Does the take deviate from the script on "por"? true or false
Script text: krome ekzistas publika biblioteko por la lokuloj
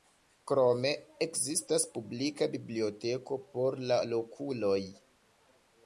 false